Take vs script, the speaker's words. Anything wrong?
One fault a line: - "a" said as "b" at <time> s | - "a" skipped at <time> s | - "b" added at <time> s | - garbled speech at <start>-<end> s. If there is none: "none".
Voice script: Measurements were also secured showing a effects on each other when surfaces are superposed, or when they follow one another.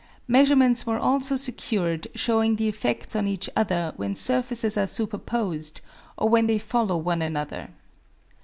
- "a" said as "the" at 2.5 s